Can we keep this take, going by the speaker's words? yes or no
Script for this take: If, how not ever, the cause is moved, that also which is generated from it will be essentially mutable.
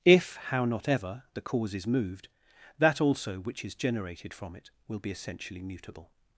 yes